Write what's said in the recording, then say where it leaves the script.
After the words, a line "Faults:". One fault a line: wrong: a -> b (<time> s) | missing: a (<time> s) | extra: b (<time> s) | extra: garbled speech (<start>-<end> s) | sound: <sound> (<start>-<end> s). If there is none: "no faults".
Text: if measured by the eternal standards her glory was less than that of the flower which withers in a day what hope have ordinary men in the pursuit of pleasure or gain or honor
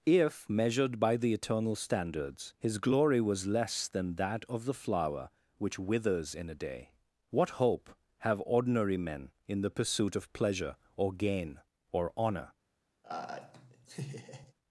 if measured by the eternal standards his glory was less than that of the flower which withers in a day what hope have ordinary men in the pursuit of pleasure or gain or honor
Faults:
wrong: her -> his (2.6 s)
sound: laugh (13.0-14.5 s)